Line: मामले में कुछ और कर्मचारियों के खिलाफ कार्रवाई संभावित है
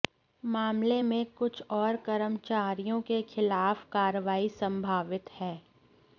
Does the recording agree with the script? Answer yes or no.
yes